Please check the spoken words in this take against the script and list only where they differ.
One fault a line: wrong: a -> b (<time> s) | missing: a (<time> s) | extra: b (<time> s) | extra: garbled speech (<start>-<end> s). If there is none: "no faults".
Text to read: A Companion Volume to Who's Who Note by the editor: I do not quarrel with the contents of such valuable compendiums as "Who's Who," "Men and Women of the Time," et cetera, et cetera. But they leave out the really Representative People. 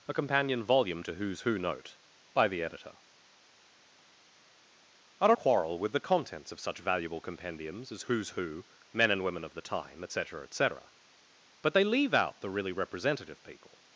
missing: not (5.3 s)